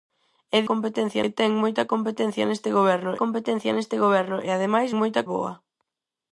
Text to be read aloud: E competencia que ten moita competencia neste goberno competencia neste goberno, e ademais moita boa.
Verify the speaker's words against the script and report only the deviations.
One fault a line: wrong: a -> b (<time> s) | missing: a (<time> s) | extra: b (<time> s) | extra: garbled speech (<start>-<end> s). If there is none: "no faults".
no faults